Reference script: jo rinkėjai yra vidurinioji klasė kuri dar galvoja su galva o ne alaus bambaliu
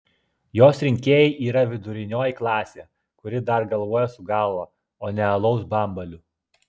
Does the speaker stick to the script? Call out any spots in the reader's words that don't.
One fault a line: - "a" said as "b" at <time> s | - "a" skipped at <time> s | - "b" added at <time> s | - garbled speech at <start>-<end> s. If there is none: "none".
- "jo" said as "jos" at 0.6 s